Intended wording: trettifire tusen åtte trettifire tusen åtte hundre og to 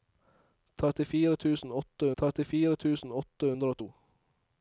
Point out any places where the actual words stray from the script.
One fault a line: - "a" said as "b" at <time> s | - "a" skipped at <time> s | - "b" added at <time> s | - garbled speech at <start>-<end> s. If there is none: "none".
none